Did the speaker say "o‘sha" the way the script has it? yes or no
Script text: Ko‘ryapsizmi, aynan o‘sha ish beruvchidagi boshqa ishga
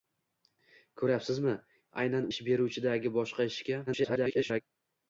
no